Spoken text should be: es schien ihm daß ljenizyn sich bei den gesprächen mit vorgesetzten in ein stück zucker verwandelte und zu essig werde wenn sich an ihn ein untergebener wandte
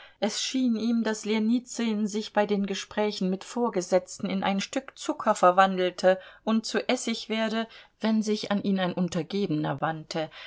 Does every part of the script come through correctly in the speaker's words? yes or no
yes